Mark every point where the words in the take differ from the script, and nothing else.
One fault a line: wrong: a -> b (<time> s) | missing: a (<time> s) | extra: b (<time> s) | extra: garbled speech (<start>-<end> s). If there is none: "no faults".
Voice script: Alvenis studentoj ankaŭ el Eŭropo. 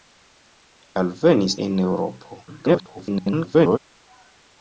missing: studentoj ankaŭ (1.6 s)
extra: garbled speech (2.5-3.8 s)